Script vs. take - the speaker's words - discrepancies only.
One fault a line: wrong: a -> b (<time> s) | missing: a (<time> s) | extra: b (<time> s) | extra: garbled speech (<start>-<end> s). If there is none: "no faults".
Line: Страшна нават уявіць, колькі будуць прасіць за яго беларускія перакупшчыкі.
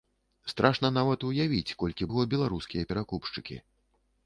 missing: будуць прасіць за (2.1 s)